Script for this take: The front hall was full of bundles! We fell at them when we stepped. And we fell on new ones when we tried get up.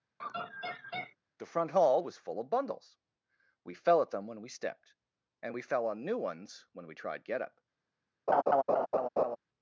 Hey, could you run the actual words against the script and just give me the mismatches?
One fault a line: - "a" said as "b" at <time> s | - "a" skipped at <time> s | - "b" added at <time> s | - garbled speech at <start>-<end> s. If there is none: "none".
none